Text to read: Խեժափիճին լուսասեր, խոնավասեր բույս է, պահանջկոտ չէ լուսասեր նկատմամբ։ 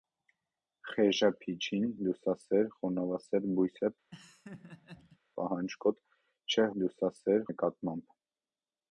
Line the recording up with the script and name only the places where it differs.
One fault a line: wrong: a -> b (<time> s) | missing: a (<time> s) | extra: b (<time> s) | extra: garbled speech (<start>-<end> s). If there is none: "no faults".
no faults